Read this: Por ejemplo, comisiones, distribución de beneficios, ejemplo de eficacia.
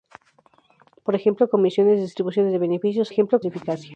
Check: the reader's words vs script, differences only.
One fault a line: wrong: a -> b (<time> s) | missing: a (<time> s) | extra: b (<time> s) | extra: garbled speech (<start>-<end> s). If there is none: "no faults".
no faults